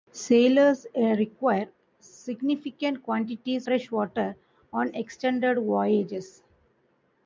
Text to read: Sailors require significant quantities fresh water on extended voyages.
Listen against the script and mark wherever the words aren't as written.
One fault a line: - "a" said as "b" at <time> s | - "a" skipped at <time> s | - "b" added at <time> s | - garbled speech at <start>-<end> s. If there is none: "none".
none